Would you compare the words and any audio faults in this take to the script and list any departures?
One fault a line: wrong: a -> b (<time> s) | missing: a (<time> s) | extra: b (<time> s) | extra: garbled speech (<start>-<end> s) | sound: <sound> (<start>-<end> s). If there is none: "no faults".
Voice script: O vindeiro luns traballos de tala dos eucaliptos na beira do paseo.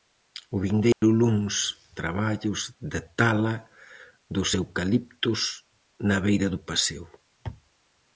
sound: dropout (0.9-1.0 s)